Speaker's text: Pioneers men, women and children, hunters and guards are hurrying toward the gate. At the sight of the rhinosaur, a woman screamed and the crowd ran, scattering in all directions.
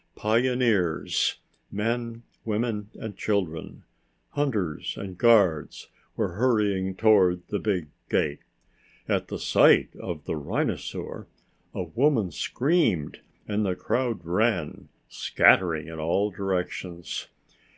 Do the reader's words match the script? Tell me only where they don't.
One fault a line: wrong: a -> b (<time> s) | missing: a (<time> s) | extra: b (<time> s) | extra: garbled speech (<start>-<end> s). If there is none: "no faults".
wrong: are -> were (6.2 s)
extra: big (7.6 s)